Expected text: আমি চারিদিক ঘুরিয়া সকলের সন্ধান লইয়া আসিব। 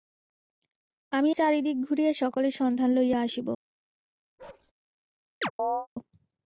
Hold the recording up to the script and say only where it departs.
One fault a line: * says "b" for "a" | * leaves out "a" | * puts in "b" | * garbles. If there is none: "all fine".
all fine